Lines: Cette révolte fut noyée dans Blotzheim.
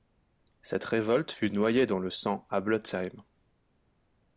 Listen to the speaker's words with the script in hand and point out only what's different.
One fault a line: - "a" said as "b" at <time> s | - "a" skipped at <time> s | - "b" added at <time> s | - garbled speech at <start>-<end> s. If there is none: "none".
- "le sang à" added at 2.0 s